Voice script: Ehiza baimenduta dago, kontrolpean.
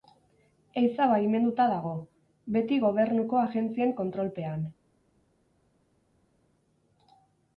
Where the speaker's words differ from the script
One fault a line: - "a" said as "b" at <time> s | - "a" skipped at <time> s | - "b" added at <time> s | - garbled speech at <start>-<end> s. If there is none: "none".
- "beti Gobernuko Agentzien" added at 2.6 s